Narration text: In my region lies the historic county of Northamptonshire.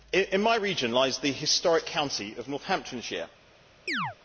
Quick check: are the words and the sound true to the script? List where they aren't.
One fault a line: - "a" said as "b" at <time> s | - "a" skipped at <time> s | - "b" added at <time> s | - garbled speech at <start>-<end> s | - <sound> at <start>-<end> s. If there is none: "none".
- chirp at 3.9-4.2 s